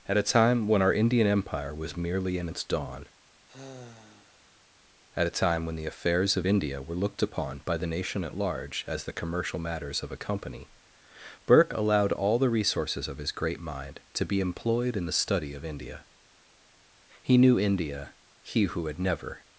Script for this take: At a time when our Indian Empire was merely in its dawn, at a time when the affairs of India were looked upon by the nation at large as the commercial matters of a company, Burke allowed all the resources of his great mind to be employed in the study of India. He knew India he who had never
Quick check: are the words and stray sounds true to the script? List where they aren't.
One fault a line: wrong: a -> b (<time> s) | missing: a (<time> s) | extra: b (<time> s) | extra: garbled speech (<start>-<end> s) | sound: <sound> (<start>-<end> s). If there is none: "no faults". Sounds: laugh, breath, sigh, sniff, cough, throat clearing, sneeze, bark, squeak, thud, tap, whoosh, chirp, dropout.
sound: sigh (3.5-4.6 s)